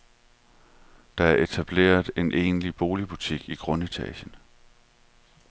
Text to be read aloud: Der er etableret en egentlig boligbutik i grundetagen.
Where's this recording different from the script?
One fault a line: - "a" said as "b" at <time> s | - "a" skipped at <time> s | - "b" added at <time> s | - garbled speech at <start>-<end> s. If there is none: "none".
none